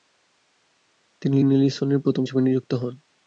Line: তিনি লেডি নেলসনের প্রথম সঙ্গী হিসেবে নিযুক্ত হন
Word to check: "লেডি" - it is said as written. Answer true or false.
false